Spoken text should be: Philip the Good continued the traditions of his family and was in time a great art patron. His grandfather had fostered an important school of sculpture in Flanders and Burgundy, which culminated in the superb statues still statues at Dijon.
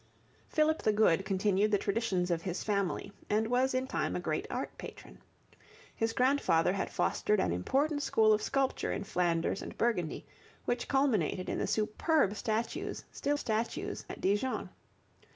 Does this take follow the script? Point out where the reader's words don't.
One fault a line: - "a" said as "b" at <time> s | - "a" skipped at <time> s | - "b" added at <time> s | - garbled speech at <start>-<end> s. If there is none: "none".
none